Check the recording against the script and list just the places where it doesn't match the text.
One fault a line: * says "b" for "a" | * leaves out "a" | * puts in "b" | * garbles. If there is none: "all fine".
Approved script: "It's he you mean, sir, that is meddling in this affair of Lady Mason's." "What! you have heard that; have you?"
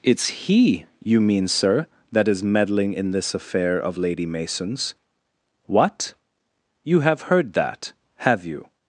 all fine